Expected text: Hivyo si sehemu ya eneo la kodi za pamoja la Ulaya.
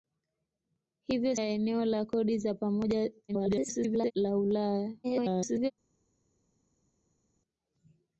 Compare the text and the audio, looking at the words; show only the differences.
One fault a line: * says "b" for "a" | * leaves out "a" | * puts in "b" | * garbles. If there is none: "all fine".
* leaves out "si sehemu"
* garbles
* garbles